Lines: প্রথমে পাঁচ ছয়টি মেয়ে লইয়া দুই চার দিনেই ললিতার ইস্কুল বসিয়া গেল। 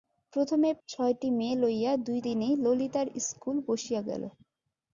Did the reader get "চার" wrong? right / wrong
wrong